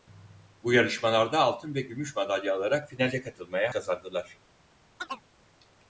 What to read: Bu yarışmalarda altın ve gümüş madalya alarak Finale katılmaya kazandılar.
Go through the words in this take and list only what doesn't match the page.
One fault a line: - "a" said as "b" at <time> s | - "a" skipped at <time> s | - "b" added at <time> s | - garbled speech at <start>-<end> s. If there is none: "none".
none